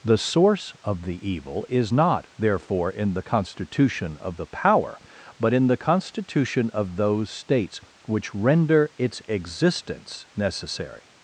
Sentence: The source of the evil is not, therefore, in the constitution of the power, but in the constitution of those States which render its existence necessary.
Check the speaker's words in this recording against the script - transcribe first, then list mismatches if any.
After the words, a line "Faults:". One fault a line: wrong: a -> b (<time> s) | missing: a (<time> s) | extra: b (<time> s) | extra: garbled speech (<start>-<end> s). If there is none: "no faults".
The source of the evil is not, therefore, in the constitution of the power, but in the constitution of those States which render its existence necessary.
Faults:
no faults